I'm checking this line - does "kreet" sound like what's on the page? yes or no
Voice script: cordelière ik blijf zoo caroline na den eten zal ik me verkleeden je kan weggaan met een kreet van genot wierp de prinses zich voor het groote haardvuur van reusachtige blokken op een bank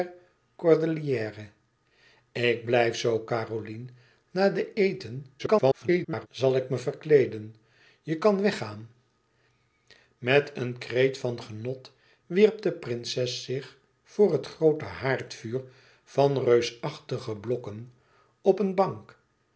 yes